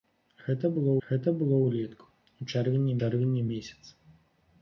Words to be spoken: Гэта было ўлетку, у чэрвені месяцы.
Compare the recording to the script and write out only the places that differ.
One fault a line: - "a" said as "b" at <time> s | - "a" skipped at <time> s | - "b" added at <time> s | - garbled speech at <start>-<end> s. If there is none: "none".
- "гэта было" added at 1.1 s
- "чэрвені" added at 3.0 s